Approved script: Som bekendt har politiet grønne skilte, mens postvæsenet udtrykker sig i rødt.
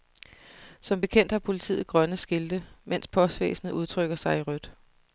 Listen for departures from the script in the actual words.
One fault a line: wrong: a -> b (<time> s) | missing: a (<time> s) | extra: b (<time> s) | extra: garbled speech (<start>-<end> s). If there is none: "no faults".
no faults